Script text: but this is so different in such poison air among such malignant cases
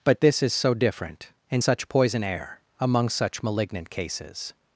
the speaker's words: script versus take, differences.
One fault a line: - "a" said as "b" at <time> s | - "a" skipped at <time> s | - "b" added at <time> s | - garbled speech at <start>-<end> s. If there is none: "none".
none